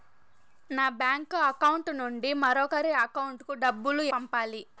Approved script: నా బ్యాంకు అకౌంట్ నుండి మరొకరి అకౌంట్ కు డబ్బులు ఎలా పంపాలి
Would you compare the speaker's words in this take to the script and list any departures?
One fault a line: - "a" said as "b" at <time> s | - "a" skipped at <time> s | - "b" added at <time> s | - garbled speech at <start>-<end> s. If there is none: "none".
- "ఎలా" skipped at 4.0 s